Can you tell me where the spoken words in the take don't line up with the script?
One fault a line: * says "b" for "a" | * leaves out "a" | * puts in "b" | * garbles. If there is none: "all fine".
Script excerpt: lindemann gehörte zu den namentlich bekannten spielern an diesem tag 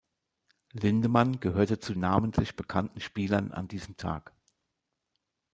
* leaves out "den"